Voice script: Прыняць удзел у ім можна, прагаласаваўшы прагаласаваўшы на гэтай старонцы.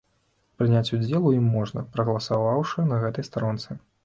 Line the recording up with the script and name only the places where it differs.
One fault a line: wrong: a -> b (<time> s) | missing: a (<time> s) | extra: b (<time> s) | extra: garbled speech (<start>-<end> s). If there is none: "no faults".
missing: прагаласаваўшы (2.9 s)